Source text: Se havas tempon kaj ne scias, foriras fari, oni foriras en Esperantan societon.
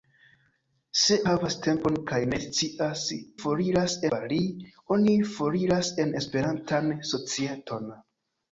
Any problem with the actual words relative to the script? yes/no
no